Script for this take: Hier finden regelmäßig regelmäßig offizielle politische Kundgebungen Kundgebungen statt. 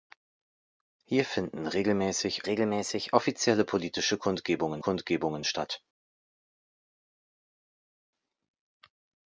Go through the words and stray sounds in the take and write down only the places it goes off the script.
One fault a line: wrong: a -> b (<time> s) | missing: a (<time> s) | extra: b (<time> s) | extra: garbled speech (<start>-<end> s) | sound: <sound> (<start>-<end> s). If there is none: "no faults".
no faults